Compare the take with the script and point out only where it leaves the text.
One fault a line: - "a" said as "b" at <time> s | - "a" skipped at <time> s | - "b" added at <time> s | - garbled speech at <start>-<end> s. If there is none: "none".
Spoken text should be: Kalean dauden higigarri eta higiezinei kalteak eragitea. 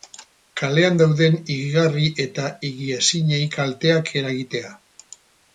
none